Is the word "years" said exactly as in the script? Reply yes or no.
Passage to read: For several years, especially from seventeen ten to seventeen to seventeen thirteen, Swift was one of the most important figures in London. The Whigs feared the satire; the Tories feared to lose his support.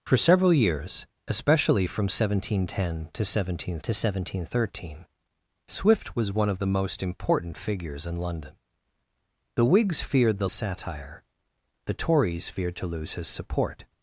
yes